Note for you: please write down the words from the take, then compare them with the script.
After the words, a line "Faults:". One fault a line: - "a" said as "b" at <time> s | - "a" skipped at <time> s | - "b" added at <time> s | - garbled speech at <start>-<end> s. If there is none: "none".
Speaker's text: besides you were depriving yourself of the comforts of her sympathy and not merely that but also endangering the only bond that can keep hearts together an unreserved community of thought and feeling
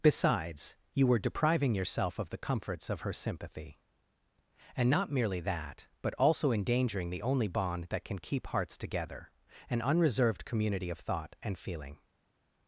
besides you were depriving yourself of the comforts of her sympathy and not merely that but also endangering the only bond that can keep hearts together an unreserved community of thought and feeling
Faults:
none